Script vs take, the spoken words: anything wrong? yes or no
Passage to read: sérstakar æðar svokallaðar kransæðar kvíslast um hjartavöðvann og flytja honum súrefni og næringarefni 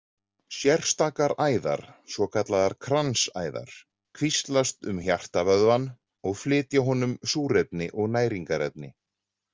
no